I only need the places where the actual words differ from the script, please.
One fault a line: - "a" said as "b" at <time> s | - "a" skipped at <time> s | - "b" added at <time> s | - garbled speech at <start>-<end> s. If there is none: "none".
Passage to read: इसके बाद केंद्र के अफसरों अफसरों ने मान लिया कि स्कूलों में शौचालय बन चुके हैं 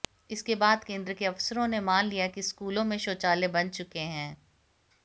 - "अफसरों" skipped at 1.7 s